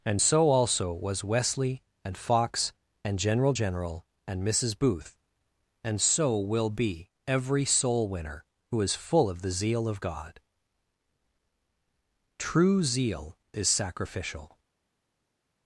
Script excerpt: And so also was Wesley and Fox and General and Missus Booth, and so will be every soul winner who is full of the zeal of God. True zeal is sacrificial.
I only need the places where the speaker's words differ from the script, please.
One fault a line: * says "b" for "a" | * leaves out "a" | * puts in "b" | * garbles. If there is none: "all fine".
* puts in "General"